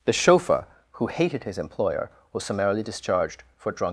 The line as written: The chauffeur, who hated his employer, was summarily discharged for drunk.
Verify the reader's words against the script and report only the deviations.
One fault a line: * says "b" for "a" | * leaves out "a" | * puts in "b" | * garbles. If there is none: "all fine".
all fine